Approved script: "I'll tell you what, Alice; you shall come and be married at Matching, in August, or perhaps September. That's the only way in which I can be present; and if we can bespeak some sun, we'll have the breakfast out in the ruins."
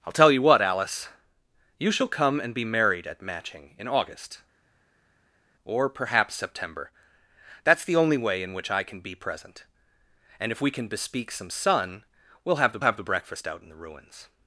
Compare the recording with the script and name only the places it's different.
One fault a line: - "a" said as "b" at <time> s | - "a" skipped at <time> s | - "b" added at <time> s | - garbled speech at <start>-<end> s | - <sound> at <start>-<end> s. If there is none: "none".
- "have the" added at 12.8 s